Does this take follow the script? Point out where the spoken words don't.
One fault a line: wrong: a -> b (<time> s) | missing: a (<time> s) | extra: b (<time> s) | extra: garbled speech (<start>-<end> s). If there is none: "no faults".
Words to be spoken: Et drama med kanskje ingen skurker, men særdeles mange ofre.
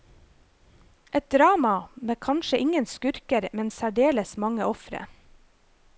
no faults